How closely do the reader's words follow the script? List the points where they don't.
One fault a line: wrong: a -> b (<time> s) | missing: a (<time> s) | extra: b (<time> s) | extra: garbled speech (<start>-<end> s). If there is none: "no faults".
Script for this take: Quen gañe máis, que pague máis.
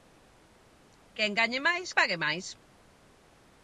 missing: que (1.9 s)